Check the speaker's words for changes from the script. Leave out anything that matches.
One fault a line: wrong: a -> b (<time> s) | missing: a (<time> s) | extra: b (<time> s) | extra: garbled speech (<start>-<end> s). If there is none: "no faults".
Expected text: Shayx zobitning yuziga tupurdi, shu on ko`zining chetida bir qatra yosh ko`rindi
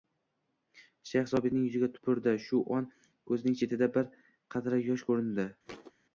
no faults